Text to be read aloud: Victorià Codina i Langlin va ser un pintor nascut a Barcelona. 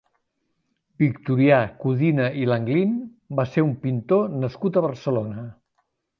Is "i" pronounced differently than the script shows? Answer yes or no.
no